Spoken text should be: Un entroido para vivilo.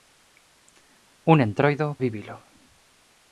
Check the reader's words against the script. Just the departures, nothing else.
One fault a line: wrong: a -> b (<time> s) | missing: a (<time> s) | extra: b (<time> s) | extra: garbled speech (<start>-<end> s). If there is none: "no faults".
missing: para (1.9 s)